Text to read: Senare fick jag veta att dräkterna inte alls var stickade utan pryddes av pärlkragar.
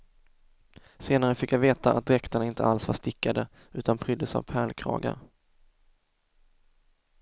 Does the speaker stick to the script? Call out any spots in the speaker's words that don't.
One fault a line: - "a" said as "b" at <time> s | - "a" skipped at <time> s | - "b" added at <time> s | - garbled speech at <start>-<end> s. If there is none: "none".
none